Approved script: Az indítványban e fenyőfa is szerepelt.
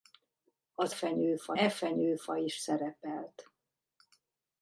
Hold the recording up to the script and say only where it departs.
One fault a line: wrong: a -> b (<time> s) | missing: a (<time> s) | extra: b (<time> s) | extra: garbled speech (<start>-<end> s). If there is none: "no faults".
wrong: indítványban -> fenyőfa (0.9 s)